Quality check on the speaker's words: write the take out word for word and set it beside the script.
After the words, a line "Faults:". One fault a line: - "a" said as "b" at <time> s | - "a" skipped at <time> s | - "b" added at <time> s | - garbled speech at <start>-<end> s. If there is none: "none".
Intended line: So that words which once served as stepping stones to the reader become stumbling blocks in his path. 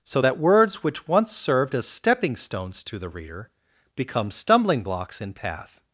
So that words which once served as stepping stones to the reader become stumbling blocks in path.
Faults:
- "his" skipped at 5.3 s